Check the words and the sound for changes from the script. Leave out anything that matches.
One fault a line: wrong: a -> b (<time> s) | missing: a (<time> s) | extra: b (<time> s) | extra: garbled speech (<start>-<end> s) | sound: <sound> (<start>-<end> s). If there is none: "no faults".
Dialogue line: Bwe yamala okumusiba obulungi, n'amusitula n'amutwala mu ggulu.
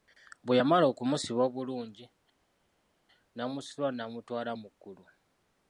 no faults